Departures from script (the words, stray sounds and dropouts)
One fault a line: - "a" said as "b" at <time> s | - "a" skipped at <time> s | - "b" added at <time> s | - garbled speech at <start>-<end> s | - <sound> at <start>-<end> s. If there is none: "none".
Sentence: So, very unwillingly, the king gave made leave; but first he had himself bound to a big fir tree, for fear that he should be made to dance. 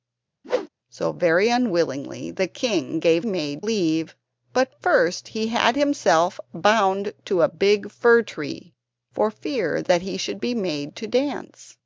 - whoosh at 0.4-0.7 s